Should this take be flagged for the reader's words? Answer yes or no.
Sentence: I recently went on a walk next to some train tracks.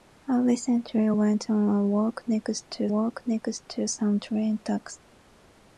yes